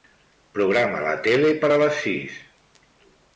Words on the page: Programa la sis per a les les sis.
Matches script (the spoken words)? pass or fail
fail